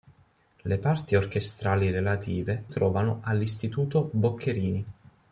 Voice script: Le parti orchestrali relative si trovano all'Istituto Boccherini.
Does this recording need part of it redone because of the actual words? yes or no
yes